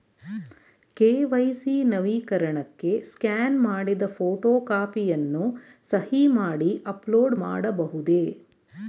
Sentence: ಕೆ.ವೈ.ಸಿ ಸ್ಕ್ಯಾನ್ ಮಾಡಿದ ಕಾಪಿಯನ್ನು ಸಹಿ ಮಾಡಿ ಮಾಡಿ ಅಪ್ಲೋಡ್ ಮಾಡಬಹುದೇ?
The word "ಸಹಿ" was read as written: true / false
true